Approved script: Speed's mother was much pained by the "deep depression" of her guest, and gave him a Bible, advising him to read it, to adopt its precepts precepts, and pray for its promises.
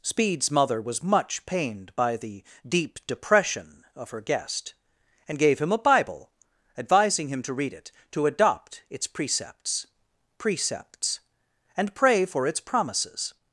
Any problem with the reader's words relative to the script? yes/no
no